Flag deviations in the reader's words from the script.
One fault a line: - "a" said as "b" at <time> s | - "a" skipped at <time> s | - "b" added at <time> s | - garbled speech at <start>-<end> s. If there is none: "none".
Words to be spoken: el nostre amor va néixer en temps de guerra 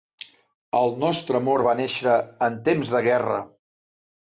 none